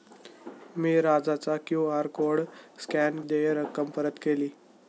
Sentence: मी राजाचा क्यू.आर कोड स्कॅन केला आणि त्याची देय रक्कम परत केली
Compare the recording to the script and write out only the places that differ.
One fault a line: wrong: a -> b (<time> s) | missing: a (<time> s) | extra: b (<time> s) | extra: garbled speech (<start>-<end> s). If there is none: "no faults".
missing: केला आणि त्याची (3.2 s)